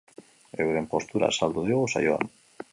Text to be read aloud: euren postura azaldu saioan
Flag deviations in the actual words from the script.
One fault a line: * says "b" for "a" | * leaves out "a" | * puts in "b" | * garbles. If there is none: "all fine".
* puts in "digu"